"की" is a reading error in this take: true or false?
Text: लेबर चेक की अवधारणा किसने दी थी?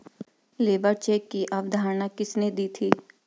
false